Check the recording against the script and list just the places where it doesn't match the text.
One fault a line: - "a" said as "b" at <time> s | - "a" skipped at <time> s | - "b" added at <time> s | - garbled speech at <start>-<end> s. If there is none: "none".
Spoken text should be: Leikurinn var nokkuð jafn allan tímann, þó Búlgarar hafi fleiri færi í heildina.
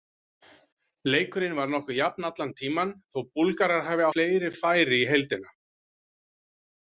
none